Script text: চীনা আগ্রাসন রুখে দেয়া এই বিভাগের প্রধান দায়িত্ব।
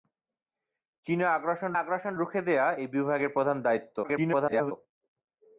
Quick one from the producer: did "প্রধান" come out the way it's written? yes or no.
yes